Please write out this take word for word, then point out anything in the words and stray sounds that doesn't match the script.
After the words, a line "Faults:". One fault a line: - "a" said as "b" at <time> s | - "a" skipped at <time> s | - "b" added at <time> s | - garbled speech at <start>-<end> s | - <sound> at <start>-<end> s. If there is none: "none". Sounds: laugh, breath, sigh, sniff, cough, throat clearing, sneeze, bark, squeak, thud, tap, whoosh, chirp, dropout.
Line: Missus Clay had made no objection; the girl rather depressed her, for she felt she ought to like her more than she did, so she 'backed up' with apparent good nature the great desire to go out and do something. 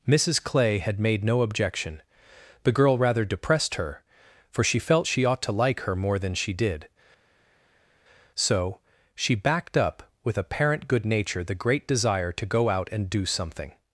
Missus Clay had made no objection; the girl rather depressed her, for she felt she ought to like her more than she did, so she 'backed up' with apparent good nature the great desire to go out and do something.
Faults:
none